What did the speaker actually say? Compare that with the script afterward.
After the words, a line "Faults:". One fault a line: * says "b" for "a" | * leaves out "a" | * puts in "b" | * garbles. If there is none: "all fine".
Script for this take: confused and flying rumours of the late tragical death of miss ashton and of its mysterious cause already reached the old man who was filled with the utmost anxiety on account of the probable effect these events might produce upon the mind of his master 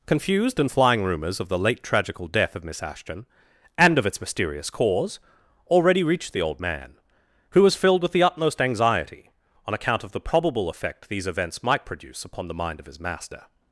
confused and flying rumours of the late tragical death of miss ashton and of its mysterious cause already reached the old man who was filled with the utmost anxiety on account of the probable effect these events might produce upon the mind of his master
Faults:
all fine